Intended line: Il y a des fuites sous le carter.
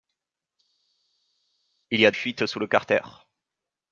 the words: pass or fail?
fail